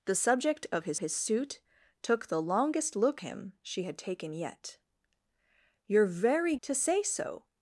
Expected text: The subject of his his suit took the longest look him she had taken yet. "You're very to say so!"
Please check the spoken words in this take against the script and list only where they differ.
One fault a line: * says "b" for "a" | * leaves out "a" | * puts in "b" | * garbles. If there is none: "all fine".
all fine